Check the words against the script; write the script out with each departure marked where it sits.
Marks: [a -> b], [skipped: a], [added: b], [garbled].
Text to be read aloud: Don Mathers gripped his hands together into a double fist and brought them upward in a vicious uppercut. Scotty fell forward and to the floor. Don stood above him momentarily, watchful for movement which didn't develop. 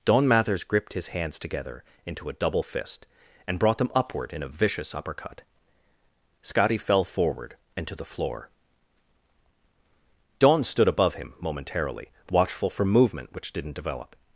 Don Mathers gripped his hands together into a double fist and brought them upward in a vicious uppercut. Scotty fell forward and to the floor. Don stood above him momentarily, watchful for movement which didn't develop.